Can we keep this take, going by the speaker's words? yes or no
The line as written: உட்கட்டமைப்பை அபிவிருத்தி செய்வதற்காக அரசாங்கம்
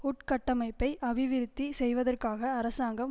yes